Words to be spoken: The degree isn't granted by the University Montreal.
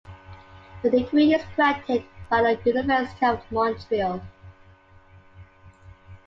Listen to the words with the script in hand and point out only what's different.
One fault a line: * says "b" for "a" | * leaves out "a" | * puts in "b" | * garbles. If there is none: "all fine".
* says "is" for "isn't"
* puts in "of"